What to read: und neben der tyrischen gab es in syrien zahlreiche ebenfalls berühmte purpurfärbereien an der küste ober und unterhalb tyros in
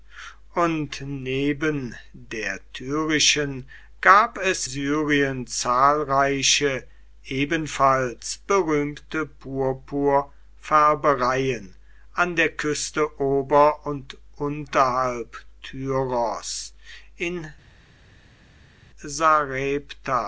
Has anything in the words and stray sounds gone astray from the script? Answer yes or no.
yes